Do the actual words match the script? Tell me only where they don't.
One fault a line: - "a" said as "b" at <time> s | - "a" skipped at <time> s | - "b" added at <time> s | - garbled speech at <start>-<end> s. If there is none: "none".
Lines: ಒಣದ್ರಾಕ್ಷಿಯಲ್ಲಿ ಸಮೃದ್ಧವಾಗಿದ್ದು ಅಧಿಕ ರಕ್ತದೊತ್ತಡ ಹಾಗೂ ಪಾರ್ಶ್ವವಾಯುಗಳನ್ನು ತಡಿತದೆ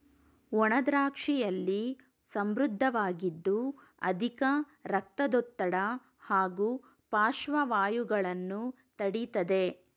none